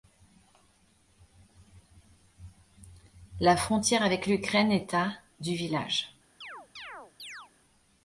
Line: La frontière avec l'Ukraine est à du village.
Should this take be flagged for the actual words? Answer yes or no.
no